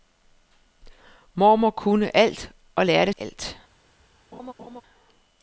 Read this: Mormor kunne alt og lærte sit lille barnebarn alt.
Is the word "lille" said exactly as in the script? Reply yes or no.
no